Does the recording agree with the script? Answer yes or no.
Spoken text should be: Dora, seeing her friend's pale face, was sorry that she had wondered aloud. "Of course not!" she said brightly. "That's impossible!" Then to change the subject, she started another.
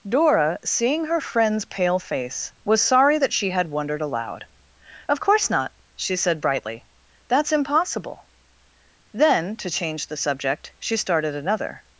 yes